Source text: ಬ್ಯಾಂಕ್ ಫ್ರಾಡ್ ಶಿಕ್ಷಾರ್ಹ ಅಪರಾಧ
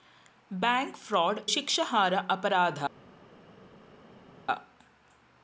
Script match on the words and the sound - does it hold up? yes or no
yes